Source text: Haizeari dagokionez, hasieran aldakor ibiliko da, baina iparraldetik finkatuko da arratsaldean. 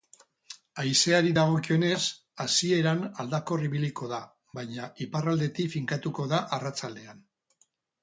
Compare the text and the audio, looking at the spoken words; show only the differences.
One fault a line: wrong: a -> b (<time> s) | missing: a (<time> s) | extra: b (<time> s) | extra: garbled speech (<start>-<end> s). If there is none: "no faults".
no faults